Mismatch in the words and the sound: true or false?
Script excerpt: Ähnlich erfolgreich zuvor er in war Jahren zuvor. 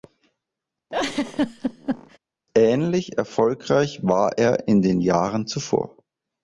true